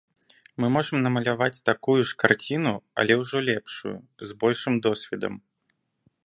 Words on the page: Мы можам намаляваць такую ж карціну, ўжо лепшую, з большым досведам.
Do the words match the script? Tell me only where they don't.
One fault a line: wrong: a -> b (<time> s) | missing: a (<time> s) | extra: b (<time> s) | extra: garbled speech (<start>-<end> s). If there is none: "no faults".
extra: але (3.0 s)